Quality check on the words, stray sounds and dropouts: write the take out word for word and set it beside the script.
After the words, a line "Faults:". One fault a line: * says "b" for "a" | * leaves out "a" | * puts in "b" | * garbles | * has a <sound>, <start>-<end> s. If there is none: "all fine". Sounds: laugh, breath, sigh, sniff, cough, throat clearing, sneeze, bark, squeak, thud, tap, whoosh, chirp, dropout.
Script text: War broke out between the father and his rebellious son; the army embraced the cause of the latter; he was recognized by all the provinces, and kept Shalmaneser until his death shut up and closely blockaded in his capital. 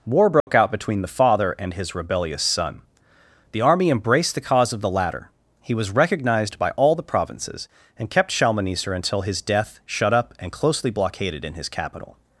War broke out between the father and his rebellious son; the army embraced the cause of the latter; he was recognized by all the provinces, and kept Shalmaneser until his death shut up and closely blockaded in his capital.
Faults:
* has a dropout, 0.4-0.5 s